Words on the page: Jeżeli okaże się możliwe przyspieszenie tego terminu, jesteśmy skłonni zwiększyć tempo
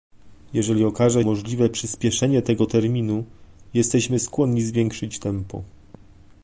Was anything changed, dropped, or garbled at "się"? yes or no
yes